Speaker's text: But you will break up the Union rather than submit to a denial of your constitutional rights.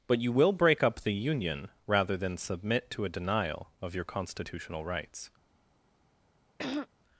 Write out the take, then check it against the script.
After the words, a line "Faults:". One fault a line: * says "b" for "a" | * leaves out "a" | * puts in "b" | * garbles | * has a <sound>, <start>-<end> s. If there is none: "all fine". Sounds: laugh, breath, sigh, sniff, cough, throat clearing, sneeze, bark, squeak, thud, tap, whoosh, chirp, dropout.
But you will break up the Union rather than submit to a denial of your constitutional rights.
Faults:
* has a throat clearing, 6.6-6.9 s